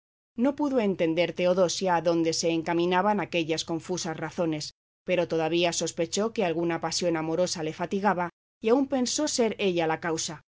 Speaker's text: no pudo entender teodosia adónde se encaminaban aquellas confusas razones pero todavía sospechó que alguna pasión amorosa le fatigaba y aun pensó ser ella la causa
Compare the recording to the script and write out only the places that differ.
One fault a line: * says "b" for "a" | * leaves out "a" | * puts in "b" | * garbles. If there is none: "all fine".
all fine